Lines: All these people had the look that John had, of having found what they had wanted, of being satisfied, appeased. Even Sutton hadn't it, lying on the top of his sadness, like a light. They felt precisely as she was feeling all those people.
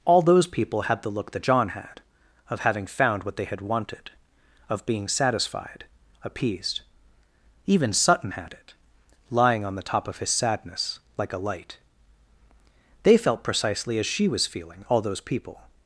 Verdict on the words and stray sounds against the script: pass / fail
fail